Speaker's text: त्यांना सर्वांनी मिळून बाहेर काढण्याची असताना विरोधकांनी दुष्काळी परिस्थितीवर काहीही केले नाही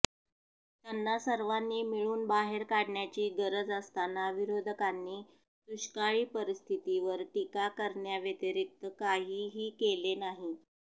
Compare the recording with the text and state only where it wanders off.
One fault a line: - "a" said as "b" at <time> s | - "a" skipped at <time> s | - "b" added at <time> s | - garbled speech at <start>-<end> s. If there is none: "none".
- "गरज" added at 3.4 s
- "टीका करण्याव्यतिरिक्त" added at 7.3 s